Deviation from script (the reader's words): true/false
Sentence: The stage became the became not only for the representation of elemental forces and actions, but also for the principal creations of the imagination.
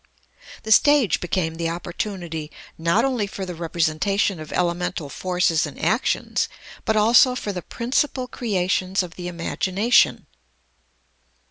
true